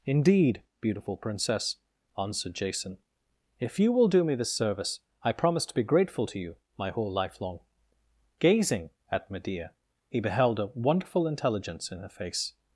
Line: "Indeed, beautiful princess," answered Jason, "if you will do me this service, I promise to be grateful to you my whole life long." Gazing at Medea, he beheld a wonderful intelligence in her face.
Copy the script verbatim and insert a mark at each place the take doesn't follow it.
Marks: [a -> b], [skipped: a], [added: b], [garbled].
"Indeed, beautiful princess," answered Jason, "if you will do me this service, I promise to be grateful to you my whole life long." Gazing at Medea, he beheld a wonderful intelligence in her face.